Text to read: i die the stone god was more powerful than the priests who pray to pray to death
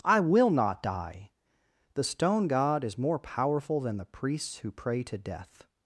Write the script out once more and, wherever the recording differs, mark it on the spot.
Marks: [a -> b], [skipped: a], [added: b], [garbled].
i [added: will not] die the stone god [was -> is] more powerful than the priests who pray to [skipped: pray to] death